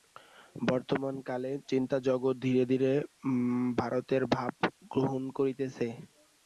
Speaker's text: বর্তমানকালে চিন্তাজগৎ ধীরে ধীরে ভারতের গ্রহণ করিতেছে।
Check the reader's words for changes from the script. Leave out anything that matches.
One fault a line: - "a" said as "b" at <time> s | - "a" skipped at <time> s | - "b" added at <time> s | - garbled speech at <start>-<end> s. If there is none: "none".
- "ভাব" added at 4.3 s